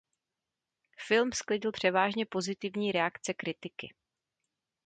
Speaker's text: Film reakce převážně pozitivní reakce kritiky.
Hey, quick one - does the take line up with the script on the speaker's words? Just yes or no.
no